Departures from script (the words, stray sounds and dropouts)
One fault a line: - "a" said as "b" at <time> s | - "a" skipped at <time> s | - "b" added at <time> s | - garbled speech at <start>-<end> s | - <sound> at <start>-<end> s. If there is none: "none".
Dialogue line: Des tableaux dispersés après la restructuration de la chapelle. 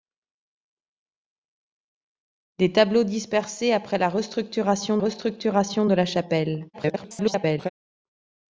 - "restructuration" added at 5.0 s
- garbled speech at 6.7-7.7 s